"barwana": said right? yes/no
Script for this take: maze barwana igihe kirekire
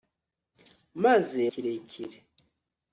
no